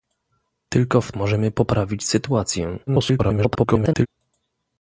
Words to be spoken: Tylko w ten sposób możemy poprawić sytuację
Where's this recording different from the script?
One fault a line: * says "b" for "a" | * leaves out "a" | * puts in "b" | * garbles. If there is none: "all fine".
* leaves out "ten sposób"
* garbles